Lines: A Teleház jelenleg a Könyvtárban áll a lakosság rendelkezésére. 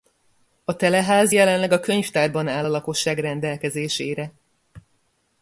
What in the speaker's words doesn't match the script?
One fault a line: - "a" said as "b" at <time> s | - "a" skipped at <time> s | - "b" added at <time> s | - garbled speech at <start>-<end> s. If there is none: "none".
none